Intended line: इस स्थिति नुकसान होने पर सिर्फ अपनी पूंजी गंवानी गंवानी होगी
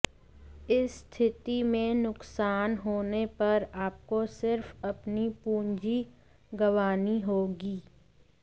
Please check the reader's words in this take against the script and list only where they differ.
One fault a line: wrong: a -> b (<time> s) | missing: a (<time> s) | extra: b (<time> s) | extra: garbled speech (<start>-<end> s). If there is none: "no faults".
extra: में (1.6 s)
extra: आपको (3.9 s)
missing: गंवानी (7.2 s)